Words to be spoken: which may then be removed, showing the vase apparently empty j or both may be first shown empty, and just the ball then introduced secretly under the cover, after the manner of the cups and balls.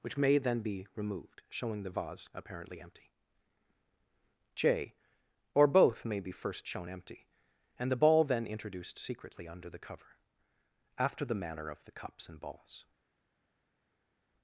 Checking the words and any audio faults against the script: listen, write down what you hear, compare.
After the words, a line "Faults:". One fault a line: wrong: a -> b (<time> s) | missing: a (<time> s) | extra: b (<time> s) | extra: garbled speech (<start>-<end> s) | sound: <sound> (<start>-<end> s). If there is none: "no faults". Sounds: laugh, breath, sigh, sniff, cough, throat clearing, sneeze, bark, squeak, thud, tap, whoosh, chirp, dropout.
which may then be removed, showing the vase apparently empty j or both may be first shown empty, and the ball then introduced secretly under the cover, after the manner of the cups and balls.
Faults:
missing: just (7.9 s)